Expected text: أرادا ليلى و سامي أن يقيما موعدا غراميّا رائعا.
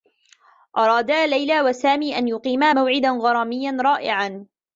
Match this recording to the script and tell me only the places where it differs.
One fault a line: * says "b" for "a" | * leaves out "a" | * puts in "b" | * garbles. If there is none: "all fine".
all fine